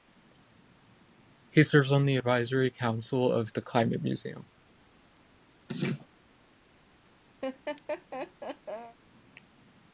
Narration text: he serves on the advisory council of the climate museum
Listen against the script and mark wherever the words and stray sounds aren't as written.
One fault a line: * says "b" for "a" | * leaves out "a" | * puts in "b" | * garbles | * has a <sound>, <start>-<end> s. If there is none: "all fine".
* has a laugh, 5.7-6.1 s
* has a laugh, 7.4-9.0 s